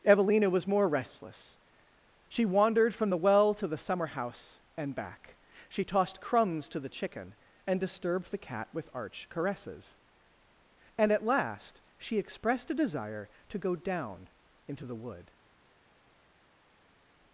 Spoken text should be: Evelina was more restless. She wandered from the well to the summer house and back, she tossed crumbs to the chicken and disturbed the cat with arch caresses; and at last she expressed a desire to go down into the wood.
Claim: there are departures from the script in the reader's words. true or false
false